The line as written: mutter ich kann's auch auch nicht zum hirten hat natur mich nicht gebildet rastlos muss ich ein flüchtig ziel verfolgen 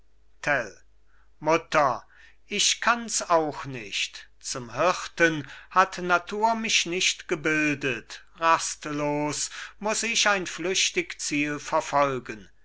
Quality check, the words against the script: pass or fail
fail